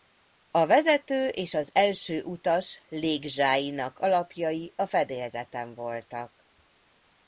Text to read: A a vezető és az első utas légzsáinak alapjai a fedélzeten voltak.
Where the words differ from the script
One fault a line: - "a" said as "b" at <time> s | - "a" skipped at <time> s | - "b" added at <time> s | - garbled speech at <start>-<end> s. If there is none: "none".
- "a" skipped at 0.7 s